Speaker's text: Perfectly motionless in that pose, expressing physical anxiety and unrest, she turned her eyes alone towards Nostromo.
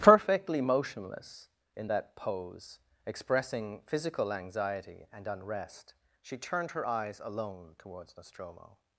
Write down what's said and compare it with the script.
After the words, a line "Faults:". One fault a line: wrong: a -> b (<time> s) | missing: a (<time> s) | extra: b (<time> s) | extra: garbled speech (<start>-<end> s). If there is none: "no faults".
Perfectly motionless in that pose, expressing physical anxiety and unrest, she turned her eyes alone towards Nostromo.
Faults:
no faults